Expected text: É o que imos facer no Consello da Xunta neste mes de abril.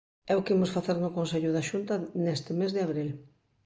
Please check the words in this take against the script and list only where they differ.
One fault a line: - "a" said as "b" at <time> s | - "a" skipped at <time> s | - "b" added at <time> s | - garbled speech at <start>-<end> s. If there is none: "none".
none